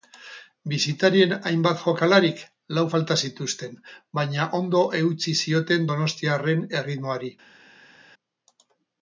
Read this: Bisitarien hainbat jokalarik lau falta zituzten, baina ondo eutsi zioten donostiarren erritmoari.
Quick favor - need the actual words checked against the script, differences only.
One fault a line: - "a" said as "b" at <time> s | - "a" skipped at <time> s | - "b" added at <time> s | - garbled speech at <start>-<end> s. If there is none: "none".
none